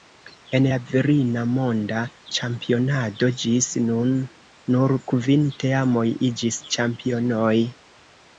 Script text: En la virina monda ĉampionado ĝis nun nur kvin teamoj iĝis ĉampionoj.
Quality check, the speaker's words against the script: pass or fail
pass